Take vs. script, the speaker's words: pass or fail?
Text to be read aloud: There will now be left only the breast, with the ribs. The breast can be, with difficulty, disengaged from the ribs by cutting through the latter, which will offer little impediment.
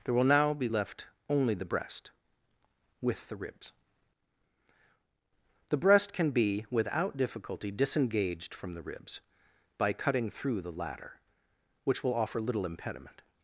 fail